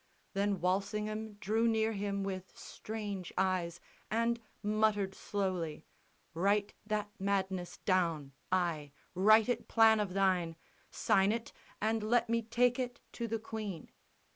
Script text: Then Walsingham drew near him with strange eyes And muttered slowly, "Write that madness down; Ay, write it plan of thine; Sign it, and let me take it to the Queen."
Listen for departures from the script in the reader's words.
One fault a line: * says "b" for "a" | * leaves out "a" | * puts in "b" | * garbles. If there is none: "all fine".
all fine